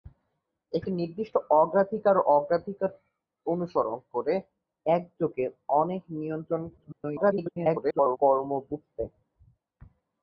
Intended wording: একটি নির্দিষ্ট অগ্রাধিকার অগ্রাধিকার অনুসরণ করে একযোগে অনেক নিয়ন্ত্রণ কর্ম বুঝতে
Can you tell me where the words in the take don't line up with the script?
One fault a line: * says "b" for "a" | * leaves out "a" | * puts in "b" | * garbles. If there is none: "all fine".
* garbles